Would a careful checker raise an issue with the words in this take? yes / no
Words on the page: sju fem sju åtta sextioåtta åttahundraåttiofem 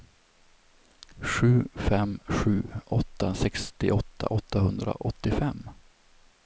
no